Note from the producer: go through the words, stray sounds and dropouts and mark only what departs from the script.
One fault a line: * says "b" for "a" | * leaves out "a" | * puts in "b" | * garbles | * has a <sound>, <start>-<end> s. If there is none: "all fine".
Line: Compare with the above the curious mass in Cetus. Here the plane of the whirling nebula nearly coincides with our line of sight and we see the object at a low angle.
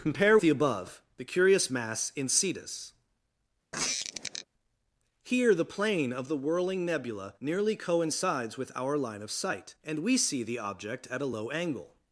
* leaves out "with"
* has a squeak, 3.7-4.5 s